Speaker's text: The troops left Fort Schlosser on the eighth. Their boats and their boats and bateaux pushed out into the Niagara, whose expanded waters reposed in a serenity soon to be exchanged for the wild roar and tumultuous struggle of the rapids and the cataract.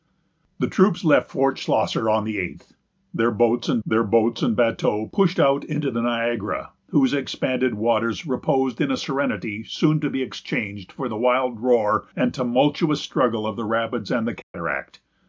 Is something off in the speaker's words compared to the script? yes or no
no